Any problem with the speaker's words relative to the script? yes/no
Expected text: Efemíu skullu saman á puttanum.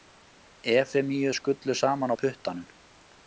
no